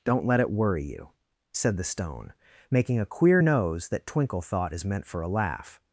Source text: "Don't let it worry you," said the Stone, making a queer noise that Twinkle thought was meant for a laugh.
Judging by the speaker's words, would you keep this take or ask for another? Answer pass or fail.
fail